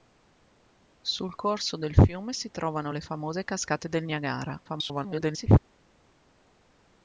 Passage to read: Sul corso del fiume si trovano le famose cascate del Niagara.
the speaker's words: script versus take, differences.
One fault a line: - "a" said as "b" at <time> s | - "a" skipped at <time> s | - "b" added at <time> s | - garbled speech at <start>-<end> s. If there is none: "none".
- garbled speech at 4.6-5.6 s